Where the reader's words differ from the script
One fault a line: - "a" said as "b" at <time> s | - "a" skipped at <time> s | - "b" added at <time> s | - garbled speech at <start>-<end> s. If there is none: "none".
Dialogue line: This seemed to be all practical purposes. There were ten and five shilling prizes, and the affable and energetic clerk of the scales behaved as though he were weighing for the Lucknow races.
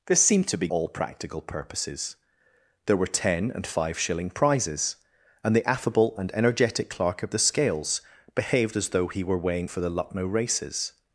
none